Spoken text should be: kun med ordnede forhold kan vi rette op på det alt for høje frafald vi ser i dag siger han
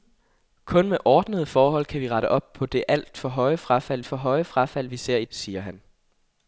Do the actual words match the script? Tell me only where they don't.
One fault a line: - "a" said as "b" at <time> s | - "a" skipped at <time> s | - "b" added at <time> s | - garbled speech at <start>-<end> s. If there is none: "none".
- "for høje frafald" added at 4.0 s
- "dag" skipped at 5.2 s